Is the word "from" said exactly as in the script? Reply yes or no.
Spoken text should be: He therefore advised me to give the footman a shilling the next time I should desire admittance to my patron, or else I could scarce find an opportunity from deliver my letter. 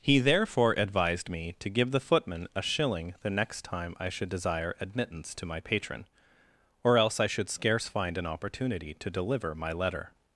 no